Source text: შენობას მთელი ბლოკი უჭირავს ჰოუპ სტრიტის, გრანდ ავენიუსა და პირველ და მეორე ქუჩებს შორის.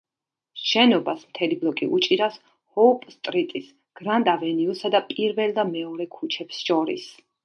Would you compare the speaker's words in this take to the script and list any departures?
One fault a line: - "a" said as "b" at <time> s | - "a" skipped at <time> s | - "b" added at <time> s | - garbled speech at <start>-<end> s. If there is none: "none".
none